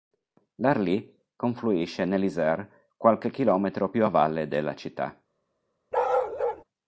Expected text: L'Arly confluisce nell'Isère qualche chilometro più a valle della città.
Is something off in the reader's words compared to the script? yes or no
no